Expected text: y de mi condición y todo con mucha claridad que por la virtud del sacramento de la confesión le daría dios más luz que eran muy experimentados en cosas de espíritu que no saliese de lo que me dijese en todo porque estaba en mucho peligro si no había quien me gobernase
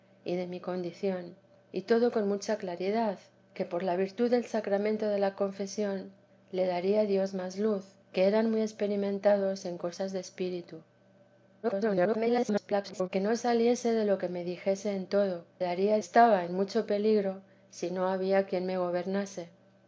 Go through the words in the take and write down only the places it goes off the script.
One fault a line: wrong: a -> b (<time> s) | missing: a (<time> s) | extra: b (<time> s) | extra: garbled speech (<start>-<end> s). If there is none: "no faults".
extra: garbled speech (11.6-13.1 s)
wrong: porque -> daría (15.6 s)